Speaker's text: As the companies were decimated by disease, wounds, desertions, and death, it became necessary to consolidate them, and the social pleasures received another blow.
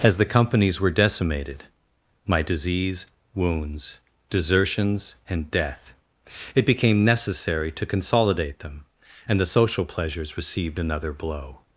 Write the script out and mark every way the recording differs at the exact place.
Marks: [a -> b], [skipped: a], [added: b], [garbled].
As the companies were decimated [by -> my] disease, wounds, desertions, and death, it became necessary to consolidate them, and the social pleasures received another blow.